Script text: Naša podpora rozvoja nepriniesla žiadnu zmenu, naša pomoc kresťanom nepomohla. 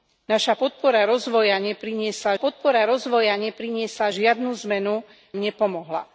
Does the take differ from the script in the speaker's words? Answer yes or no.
yes